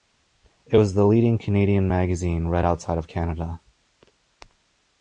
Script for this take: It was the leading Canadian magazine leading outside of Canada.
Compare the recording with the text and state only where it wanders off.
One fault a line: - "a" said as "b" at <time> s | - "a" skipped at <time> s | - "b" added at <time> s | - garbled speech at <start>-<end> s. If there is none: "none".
- "leading" said as "read" at 2.5 s